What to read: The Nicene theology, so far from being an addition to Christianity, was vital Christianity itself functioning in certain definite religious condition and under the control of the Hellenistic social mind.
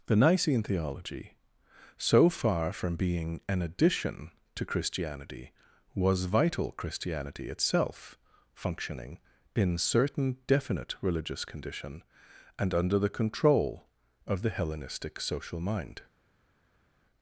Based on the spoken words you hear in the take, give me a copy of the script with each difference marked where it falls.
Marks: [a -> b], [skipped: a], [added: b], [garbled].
The Nicene theology, so far from being an addition to Christianity, was vital Christianity itself functioning in certain definite religious condition and under the control of the Hellenistic social mind.